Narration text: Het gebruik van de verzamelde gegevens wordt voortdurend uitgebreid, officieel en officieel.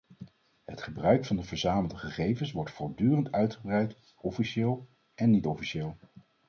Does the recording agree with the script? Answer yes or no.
no